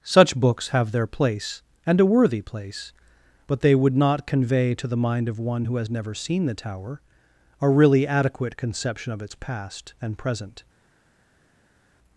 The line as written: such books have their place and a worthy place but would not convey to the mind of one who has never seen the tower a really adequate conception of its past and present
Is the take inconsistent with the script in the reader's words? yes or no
yes